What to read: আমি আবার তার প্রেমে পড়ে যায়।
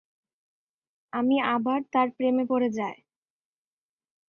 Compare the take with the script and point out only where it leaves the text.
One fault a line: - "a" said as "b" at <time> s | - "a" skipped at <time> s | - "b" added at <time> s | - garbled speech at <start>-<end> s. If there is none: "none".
none